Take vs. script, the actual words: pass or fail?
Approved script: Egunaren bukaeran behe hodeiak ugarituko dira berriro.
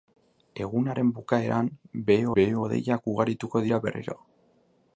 fail